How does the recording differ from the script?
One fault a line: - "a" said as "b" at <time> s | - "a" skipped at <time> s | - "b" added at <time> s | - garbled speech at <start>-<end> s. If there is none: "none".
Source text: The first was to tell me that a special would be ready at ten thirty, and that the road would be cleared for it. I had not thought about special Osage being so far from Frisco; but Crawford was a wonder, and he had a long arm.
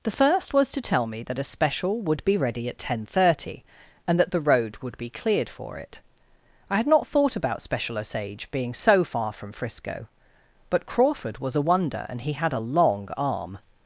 none